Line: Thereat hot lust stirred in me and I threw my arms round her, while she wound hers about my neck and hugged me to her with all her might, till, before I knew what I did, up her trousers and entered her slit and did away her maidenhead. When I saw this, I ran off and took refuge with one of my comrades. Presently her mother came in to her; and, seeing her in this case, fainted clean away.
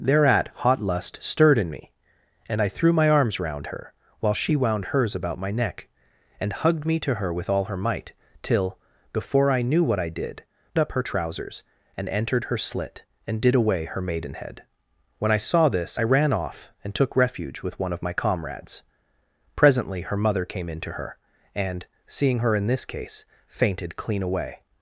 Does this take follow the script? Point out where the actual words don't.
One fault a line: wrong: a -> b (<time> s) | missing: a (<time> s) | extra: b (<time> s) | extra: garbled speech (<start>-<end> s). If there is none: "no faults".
no faults